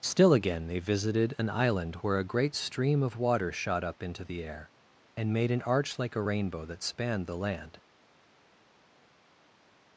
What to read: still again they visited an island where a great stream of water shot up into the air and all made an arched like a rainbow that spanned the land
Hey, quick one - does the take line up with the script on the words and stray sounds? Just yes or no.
no